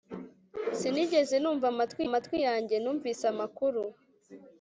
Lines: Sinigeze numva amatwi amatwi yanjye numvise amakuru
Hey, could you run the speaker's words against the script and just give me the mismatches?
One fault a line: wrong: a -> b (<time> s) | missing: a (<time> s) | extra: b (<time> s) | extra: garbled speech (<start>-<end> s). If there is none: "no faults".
no faults